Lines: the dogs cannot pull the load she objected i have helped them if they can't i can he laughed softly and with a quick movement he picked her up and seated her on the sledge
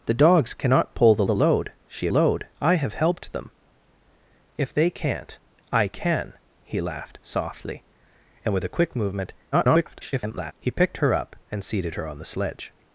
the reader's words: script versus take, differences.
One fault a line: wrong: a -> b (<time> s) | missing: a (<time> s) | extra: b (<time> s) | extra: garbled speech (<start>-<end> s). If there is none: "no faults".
extra: the (1.2 s)
wrong: objected -> load (2.1 s)
extra: garbled speech (9.5-10.5 s)